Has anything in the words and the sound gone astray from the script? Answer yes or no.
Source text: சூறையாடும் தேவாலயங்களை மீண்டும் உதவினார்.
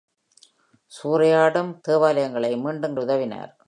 no